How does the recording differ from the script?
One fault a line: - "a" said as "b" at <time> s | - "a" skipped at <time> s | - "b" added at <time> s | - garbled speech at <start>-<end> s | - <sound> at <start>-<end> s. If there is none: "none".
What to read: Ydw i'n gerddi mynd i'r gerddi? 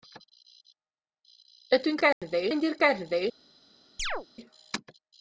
- dropout at 2.1-2.2 s
- chirp at 4.0-4.3 s